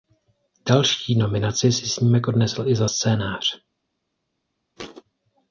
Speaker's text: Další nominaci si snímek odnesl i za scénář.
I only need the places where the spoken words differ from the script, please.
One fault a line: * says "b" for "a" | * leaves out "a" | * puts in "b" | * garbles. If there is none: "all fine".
all fine